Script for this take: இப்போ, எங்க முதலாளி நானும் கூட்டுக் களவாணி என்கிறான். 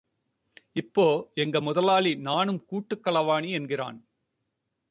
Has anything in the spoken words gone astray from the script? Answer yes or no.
no